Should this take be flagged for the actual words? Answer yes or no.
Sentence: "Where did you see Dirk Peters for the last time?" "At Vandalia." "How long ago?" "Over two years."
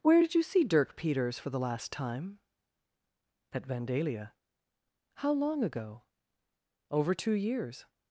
no